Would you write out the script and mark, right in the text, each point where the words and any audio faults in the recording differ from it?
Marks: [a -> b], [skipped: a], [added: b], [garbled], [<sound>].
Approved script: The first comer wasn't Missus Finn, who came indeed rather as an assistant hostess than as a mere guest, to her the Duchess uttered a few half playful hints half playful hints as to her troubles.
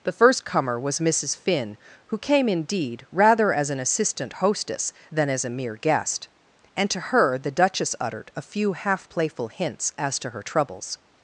The first comer [wasn't -> was] Missus Finn, who came indeed rather as an assistant hostess than as a mere guest, [added: and] to her the Duchess uttered a few half playful hints [skipped: half playful hints] as to her troubles.